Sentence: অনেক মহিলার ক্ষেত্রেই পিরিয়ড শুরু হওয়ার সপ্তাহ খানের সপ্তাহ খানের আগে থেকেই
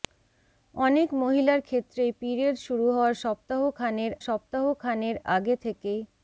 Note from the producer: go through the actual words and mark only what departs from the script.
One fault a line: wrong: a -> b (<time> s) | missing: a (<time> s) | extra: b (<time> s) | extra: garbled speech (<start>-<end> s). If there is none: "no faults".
no faults